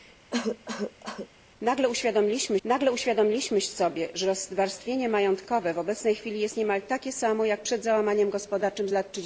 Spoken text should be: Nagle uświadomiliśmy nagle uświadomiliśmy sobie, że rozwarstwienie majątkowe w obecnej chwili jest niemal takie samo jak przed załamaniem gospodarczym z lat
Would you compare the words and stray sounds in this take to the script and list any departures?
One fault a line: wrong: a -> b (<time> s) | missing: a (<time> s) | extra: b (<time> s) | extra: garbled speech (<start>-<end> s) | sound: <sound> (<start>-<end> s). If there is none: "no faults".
sound: cough (0.3-1.3 s)